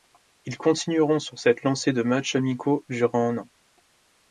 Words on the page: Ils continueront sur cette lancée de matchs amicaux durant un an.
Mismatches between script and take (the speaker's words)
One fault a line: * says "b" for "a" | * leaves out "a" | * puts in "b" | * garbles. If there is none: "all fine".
all fine